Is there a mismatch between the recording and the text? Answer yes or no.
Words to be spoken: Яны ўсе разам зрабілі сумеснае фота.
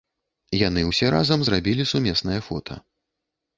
no